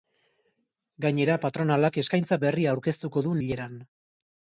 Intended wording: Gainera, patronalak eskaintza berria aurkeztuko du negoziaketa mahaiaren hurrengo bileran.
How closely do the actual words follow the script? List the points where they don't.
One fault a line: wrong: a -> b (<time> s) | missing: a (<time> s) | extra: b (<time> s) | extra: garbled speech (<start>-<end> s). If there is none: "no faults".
missing: negoziaketa mahaiaren hurrengo (3.4 s)